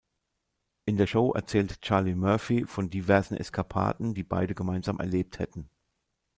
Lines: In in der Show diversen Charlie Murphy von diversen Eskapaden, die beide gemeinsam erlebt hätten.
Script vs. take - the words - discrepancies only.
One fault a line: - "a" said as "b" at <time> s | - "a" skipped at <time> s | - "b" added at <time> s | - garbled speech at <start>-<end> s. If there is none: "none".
- "in" skipped at 1.0 s
- "diversen" said as "erzählt" at 1.3 s